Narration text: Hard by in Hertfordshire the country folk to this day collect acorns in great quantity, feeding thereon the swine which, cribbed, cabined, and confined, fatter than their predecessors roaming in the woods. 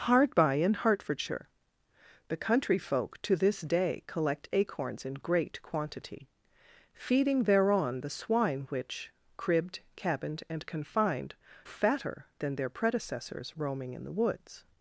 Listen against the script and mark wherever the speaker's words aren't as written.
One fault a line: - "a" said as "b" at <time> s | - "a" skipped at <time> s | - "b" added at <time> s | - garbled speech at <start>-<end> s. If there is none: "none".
none